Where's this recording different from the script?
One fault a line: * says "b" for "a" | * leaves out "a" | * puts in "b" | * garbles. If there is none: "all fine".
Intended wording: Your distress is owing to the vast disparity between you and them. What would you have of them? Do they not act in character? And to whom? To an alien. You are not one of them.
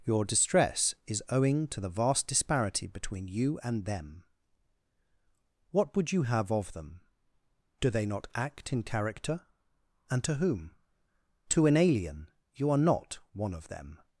all fine